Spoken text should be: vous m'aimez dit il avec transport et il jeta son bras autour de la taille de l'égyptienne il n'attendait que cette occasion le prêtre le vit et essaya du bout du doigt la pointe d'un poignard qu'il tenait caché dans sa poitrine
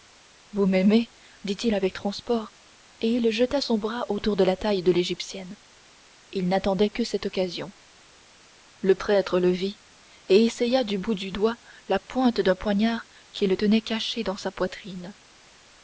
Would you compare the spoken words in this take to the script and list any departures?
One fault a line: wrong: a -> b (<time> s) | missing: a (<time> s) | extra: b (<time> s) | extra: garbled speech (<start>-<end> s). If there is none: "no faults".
no faults